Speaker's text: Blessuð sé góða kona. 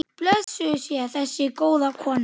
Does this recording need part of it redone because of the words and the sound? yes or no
yes